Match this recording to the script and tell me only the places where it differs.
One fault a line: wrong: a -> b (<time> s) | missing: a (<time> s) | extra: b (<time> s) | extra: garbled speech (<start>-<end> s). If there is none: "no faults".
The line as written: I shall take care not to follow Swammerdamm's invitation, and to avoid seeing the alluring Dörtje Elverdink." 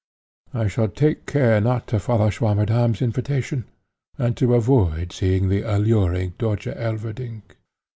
no faults